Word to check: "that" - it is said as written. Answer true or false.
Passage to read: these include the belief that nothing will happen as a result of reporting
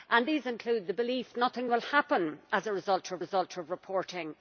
false